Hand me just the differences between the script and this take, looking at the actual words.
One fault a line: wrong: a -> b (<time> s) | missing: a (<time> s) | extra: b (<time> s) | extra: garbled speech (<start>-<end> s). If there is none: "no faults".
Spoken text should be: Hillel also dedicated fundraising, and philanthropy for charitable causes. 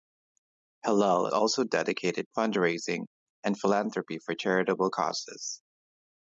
no faults